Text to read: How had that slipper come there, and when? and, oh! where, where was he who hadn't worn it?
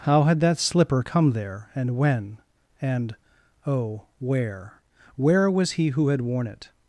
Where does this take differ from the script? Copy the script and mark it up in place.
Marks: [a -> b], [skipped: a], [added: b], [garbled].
How had that slipper come there, and when? and, oh! where, where was he who [hadn't -> had] worn it?